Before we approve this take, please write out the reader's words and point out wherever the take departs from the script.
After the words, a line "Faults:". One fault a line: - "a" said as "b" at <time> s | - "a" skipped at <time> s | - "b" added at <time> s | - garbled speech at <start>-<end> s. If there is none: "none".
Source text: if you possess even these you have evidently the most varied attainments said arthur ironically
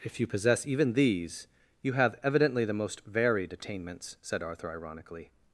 if you possess even these you have evidently the most varied attainments said arthur ironically
Faults:
none